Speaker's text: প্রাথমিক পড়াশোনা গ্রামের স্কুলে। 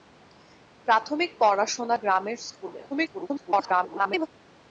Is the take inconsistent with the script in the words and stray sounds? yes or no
yes